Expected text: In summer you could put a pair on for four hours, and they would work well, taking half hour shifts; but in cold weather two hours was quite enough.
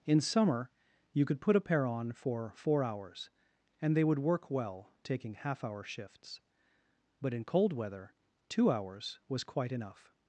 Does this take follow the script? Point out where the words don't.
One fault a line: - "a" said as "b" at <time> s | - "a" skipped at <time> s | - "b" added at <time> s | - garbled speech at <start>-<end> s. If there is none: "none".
none